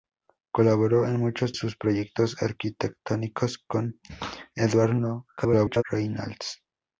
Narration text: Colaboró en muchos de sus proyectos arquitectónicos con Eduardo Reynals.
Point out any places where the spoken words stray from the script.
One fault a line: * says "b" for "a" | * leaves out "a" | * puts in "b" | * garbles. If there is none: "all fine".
* leaves out "de"
* garbles